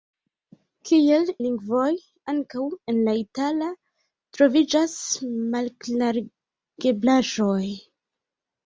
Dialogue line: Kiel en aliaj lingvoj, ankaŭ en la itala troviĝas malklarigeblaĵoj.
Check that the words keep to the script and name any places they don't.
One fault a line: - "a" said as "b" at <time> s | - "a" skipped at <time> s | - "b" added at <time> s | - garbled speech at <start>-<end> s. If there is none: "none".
- "en aliaj" skipped at 1.3 s